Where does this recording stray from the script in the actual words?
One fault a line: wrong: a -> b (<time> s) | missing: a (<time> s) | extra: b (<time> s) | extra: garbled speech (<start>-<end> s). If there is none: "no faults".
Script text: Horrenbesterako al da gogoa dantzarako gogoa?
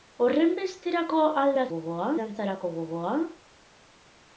no faults